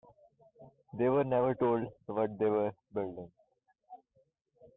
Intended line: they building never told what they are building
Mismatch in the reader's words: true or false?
true